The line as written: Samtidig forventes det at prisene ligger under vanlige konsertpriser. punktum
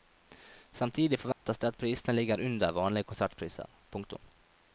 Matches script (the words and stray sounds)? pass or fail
fail